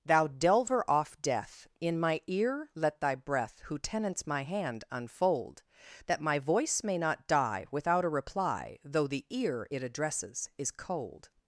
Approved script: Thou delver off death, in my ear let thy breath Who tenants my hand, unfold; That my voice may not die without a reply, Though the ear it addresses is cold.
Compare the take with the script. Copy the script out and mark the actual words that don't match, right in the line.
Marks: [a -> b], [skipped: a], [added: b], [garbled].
Thou delver off death, in my ear let thy breath Who tenants my hand, unfold; That my voice may not die without a reply, Though the ear it addresses is cold.